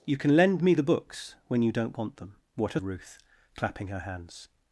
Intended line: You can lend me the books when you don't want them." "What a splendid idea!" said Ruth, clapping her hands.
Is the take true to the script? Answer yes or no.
no